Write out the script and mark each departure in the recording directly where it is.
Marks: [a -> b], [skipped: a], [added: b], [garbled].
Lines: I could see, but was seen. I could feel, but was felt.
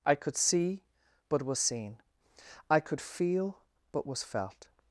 I could see, but was seen. I could feel, but was felt.